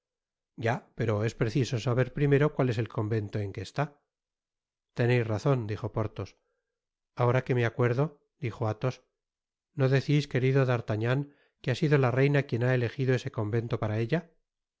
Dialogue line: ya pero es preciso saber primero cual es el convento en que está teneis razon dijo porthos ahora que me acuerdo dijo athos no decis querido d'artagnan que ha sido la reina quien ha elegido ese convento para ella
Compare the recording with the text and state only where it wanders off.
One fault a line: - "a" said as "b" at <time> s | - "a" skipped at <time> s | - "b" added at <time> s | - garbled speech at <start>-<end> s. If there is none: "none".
none